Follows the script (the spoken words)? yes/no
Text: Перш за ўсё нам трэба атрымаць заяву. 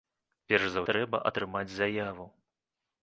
no